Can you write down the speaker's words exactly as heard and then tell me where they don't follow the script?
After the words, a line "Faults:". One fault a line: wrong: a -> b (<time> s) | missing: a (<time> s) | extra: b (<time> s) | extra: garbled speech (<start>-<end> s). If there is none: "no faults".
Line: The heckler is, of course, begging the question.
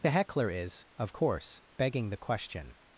The heckler is, of course, begging the question.
Faults:
no faults